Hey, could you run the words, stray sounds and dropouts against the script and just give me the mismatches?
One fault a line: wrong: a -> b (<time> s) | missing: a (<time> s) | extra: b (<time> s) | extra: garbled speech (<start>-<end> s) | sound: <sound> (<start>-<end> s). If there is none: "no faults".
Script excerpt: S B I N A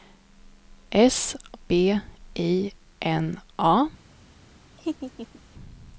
sound: laugh (4.8-5.4 s)